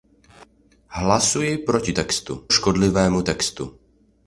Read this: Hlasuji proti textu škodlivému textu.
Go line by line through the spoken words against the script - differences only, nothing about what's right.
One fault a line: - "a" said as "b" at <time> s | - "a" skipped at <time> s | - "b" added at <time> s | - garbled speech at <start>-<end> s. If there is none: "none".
none